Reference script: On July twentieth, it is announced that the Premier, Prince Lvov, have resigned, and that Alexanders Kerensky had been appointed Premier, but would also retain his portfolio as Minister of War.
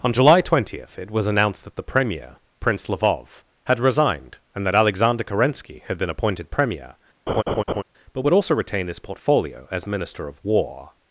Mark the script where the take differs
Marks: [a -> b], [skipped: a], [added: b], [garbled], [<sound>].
On July twentieth, it [is -> was] announced that the Premier, Prince Lvov, [have -> had] resigned, and that [Alexanders -> Alexander] Kerensky had been appointed Premier, [laugh] but would also retain his portfolio as Minister of War.